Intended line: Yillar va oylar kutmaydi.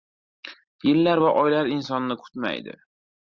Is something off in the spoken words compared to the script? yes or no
yes